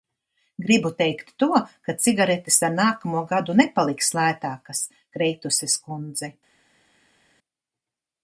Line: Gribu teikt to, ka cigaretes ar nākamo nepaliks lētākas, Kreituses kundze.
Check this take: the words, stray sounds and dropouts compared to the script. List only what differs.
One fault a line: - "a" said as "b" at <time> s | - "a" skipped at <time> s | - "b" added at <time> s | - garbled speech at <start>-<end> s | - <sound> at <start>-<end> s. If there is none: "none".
- "gadu" added at 3.3 s